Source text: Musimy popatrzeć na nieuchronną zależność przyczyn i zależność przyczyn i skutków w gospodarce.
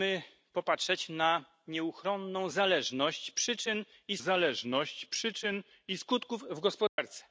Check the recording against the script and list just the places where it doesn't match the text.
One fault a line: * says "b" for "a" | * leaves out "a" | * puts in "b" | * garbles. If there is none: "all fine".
all fine